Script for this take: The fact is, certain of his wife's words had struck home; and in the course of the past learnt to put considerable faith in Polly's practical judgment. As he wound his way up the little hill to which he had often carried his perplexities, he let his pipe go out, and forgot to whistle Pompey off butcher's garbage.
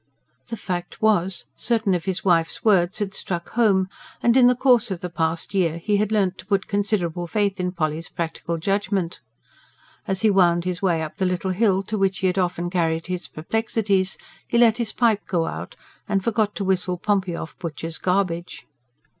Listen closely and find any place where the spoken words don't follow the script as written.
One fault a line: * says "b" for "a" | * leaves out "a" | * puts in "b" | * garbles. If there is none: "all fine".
* says "was" for "is"
* puts in "year he had"